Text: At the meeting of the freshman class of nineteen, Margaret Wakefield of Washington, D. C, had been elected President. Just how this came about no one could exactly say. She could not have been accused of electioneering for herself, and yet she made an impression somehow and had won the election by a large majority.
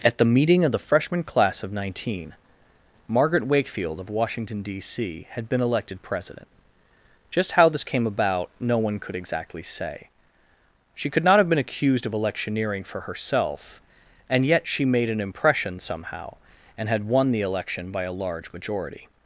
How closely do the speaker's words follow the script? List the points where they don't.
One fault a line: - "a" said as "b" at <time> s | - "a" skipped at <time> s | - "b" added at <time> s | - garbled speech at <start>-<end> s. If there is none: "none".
none